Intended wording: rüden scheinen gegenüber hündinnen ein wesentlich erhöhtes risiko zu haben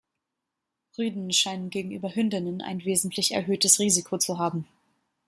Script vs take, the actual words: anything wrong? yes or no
no